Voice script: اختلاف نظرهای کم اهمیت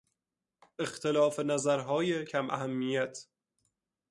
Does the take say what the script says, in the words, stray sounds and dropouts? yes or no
yes